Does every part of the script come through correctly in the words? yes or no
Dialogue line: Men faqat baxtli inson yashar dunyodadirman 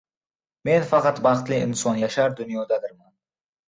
yes